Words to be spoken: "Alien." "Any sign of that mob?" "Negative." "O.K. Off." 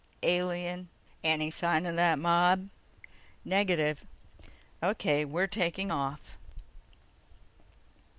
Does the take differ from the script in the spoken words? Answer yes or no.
yes